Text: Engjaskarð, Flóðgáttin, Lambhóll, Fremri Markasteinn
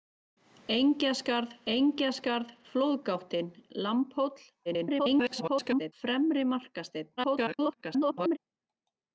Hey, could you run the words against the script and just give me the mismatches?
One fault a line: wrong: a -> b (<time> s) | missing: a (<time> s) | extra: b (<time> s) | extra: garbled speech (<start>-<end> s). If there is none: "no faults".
extra: engjaskarð (1.7 s)
extra: garbled speech (4.7-5.9 s)
extra: garbled speech (7.2-8.4 s)